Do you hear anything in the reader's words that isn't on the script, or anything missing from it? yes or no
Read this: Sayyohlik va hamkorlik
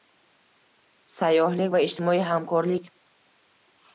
yes